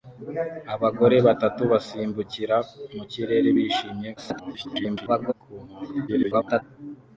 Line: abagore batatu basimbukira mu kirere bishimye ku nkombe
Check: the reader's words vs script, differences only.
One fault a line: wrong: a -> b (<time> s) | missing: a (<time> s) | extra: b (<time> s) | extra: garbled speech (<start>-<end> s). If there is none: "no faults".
extra: garbled speech (4.2-5.3 s)
extra: garbled speech (6.1-6.6 s)